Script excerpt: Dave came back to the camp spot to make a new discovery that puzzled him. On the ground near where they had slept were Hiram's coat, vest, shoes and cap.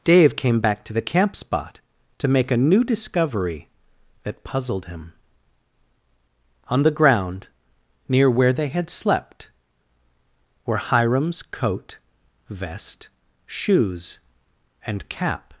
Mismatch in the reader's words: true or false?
false